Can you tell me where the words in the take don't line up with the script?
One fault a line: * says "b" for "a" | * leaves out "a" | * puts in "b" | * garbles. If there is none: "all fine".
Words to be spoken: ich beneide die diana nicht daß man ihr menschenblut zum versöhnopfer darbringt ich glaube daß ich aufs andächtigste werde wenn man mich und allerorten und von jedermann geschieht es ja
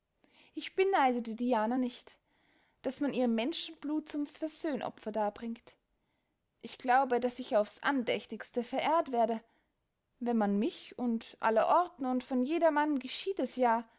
* puts in "verehrt"